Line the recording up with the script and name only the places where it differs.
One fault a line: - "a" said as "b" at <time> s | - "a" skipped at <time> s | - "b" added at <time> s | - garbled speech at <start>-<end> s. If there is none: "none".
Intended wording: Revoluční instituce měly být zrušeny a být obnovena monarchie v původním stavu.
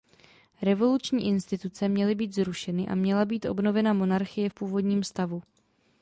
- "měla" added at 3.0 s